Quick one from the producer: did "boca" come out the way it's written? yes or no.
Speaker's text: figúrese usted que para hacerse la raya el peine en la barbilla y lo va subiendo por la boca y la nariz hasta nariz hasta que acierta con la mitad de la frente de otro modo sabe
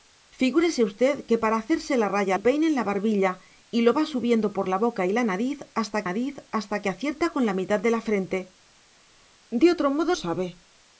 yes